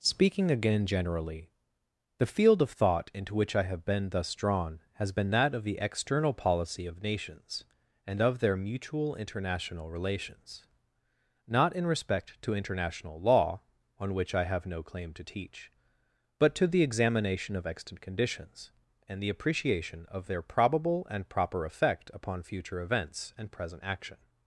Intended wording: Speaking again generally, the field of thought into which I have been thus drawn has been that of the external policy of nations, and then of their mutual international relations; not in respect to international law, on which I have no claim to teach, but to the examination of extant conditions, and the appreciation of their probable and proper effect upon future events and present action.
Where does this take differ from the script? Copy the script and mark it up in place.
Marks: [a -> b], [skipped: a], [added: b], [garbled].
Speaking again generally, the field of thought into which I have been thus drawn has been that of the external policy of nations, and [skipped: then] of their mutual international relations; not in respect to international law, on which I have no claim to teach, but to the examination of extant conditions, and the appreciation of their probable and proper effect upon future events and present action.